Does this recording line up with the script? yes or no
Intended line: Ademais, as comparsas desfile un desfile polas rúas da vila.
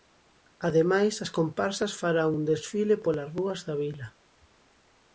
no